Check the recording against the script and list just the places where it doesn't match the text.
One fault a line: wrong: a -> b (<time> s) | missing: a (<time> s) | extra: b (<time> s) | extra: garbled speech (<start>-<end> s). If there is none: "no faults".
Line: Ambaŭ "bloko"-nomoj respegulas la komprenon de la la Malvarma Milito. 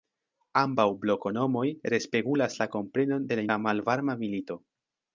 no faults